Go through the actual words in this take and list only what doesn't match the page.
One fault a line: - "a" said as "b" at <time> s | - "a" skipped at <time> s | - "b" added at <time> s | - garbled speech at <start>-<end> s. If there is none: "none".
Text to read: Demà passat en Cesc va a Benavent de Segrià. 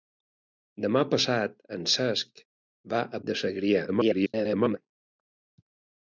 - "Benavent" skipped at 3.2 s
- garbled speech at 3.9-4.8 s